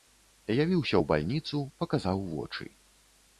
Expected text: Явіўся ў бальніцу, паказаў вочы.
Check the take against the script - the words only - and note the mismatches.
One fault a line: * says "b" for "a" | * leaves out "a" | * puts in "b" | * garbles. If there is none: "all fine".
all fine